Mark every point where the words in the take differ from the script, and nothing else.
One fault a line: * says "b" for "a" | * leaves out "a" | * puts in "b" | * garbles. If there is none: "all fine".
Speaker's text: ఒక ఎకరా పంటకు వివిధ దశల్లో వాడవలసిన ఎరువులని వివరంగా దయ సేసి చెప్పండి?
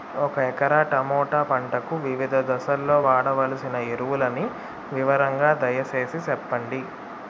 * puts in "టమోటా"